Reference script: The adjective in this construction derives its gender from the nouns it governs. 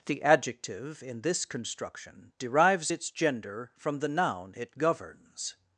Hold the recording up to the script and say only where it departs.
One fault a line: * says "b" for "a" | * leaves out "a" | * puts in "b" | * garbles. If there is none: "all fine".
* says "noun" for "nouns"